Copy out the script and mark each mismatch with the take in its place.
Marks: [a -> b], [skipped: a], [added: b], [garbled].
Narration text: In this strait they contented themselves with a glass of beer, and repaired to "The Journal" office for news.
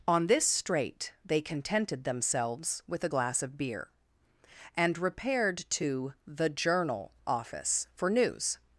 [In -> On] this strait they contented themselves with a glass of beer, and repaired to "The Journal" office for news.